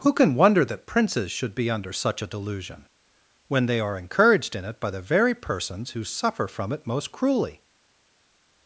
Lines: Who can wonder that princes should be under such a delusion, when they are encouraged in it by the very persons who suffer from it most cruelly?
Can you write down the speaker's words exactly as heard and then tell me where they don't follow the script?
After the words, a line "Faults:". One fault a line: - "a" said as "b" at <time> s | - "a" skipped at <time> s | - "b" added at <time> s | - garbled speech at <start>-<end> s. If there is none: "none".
Who can wonder that princes should be under such a delusion, when they are encouraged in it by the very persons who suffer from it most cruelly?
Faults:
none